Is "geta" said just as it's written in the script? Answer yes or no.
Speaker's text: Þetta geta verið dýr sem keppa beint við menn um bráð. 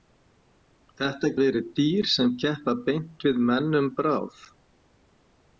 no